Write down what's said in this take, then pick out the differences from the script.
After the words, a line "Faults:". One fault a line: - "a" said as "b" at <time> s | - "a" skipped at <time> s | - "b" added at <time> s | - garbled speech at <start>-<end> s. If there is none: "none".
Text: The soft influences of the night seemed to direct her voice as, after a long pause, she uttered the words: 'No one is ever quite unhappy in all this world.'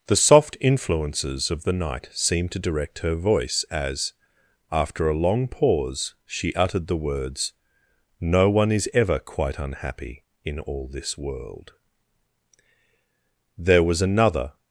The soft influences of the night seemed to direct her voice as, after a long pause, she uttered the words: 'No one is ever quite unhappy in all this world.' There was another
Faults:
- "There was another" added at 13.6 s